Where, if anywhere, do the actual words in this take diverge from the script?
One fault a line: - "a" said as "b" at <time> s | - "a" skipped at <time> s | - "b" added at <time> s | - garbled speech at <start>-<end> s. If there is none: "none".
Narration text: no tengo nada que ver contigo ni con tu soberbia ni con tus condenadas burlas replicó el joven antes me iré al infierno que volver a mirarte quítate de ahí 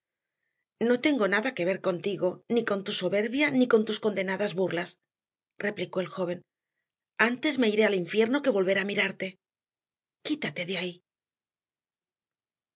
none